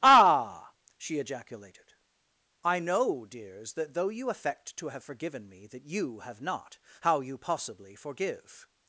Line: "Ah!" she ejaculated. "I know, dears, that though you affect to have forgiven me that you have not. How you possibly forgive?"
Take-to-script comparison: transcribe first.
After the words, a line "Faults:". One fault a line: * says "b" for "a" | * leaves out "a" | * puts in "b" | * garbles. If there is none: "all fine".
"Ah!" she ejaculated. "I know, dears, that though you affect to have forgiven me that you have not. How you possibly forgive?"
Faults:
all fine